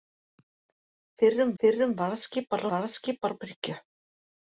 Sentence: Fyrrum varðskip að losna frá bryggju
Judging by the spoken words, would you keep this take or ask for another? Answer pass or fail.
fail